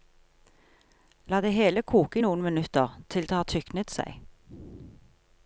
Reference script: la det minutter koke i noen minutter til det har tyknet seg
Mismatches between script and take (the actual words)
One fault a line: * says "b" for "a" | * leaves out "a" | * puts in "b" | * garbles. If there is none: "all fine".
* says "hele" for "minutter"